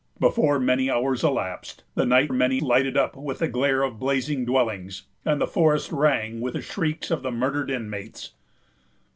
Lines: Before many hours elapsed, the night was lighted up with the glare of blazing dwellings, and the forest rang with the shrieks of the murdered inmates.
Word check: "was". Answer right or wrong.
wrong